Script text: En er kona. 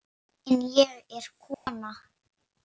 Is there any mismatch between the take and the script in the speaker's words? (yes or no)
yes